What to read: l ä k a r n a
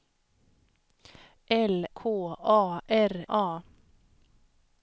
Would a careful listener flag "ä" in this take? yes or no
yes